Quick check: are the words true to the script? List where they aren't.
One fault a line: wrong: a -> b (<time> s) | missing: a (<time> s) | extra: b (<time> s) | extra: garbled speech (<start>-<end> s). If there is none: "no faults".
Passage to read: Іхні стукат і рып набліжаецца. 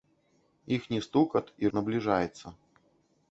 missing: рып (1.7 s)